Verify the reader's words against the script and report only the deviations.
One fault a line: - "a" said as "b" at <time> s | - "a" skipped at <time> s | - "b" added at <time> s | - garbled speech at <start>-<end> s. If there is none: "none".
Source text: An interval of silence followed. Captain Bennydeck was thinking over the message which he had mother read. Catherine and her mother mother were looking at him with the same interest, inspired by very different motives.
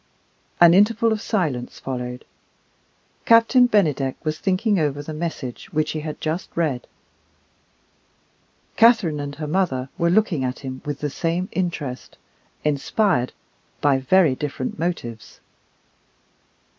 - "mother" said as "just" at 6.2 s
- "mother" skipped at 9.9 s